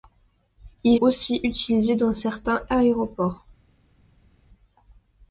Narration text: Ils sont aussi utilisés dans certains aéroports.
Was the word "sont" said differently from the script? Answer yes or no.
yes